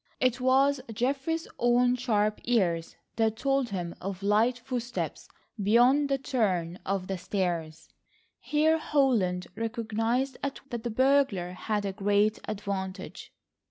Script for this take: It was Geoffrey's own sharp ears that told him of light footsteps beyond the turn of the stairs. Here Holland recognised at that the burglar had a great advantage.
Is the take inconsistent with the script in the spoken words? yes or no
no